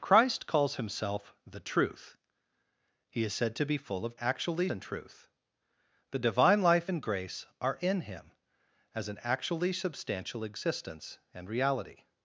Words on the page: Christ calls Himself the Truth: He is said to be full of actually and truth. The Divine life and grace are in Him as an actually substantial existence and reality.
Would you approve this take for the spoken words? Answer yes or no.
yes